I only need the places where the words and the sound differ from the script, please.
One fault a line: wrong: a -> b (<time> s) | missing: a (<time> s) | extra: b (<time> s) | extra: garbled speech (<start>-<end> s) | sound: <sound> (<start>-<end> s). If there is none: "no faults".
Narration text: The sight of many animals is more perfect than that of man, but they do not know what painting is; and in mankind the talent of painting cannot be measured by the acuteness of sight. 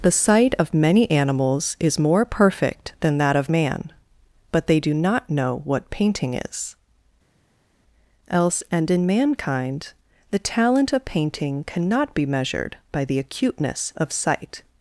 extra: else (8.3 s)